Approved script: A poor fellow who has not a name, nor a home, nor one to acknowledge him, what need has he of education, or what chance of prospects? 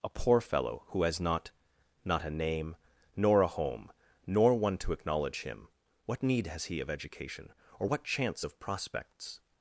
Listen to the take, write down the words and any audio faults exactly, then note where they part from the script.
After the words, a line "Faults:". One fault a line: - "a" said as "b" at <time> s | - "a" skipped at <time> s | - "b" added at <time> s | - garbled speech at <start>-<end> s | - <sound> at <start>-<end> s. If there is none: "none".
A poor fellow who has not not a name, nor a home, nor one to acknowledge him, what need has he of education, or what chance of prospects?
Faults:
- "not" added at 2.0 s